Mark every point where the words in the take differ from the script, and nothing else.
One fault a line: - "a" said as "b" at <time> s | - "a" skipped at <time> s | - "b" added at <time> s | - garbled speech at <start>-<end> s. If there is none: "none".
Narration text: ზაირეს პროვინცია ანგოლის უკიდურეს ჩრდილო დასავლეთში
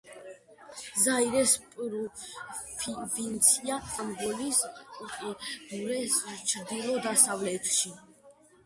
none